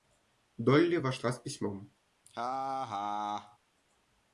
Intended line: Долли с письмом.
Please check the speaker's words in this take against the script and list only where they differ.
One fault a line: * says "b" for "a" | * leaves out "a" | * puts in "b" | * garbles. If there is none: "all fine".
* puts in "вошла"